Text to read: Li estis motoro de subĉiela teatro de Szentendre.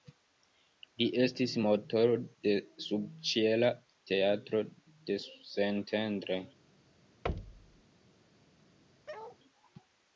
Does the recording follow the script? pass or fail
pass